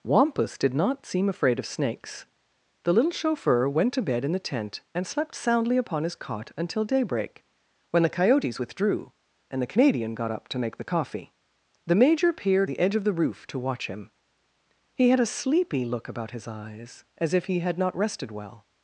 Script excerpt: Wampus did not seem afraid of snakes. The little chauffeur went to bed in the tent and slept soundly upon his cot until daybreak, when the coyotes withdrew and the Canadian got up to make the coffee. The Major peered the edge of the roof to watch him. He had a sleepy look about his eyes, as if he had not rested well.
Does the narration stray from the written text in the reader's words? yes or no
no